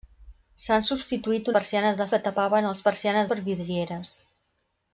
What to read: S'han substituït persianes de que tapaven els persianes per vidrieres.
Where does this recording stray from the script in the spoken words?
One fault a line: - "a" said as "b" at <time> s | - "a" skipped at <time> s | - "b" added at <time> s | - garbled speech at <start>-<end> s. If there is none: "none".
none